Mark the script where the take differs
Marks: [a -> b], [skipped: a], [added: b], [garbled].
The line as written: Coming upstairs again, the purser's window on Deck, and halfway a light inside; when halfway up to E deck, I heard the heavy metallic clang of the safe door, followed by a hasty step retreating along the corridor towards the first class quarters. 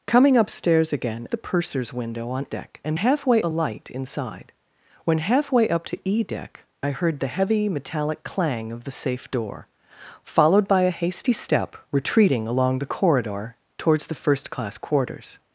Coming upstairs again, the purser's window on Deck, and halfway a light inside; when halfway up to E deck, I heard the heavy metallic clang of the safe door, followed by a hasty step retreating along the corridor towards the first class quarters.